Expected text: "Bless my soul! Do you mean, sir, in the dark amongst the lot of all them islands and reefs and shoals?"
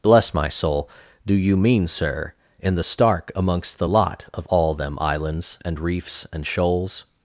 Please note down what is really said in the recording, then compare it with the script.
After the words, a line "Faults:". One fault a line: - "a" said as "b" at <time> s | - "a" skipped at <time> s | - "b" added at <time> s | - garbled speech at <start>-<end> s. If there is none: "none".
"Bless my soul! Do you mean, sir, in the stark amongst the lot of all them islands and reefs and shoals?"
Faults:
- "dark" said as "stark" at 2.8 s